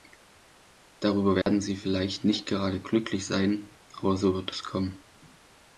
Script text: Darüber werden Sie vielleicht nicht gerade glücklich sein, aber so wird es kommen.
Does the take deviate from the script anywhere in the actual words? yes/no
no